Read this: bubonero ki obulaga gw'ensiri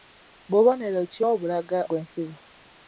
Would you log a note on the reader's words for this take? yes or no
no